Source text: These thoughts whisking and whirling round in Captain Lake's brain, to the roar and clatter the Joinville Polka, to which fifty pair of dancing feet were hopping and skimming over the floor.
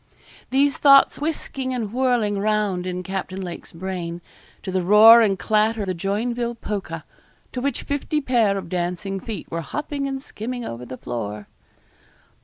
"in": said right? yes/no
yes